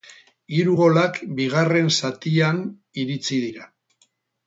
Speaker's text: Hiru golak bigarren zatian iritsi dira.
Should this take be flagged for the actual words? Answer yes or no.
no